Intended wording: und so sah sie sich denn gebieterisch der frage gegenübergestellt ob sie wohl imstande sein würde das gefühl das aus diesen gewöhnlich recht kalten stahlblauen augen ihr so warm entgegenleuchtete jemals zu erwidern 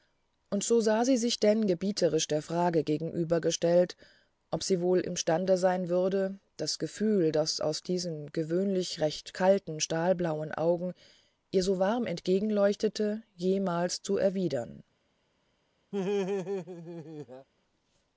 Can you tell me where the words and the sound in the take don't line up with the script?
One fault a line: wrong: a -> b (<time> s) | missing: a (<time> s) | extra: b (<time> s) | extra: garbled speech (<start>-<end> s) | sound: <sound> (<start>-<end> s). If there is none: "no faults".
sound: laugh (15.9-17.5 s)